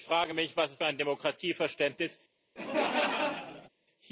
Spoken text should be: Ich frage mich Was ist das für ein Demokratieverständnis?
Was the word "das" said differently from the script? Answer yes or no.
yes